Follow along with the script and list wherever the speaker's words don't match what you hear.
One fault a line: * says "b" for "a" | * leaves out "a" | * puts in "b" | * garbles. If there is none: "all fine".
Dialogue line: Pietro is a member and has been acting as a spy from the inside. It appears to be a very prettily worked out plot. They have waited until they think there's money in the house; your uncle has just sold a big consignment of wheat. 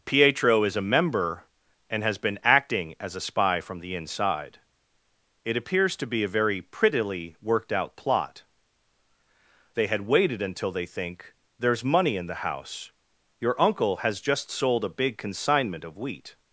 * says "had" for "have"